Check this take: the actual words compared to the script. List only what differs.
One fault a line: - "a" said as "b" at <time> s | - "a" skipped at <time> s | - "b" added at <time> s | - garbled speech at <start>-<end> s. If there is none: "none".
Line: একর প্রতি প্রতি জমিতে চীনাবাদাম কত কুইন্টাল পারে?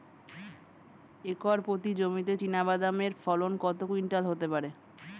- "প্রতি" skipped at 1.9 s
- "এর ফলন" added at 3.0 s
- "হতে" added at 4.3 s